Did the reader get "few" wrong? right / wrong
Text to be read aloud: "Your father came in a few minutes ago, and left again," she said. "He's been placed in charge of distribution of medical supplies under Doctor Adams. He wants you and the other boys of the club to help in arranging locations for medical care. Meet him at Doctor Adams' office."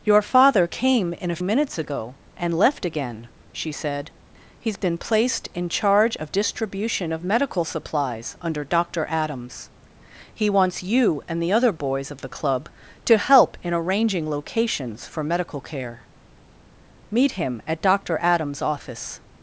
wrong